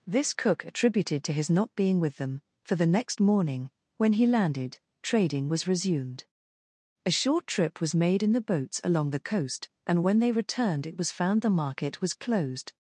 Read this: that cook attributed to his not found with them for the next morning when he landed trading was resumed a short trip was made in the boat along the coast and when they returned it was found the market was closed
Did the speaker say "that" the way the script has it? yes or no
no